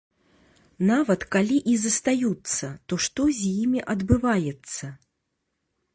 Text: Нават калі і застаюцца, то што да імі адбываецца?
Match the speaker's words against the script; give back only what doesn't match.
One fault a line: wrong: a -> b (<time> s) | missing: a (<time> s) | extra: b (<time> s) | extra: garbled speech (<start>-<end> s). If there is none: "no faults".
wrong: да -> з (3.4 s)